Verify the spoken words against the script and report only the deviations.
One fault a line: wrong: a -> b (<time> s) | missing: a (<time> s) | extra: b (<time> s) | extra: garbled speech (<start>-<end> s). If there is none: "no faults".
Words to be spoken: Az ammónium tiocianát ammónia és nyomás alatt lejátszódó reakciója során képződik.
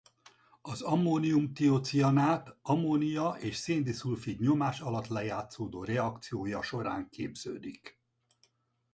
extra: szén diszulfid (3.5 s)